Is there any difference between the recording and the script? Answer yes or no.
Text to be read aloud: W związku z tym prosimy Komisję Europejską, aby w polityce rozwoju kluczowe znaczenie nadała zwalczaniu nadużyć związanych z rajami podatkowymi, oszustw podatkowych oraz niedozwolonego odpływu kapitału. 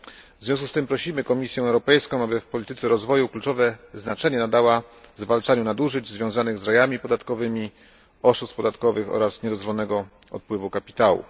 no